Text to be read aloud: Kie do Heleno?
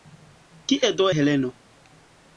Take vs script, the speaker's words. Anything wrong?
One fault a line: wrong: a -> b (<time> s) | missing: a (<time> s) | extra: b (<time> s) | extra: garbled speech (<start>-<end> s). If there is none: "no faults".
no faults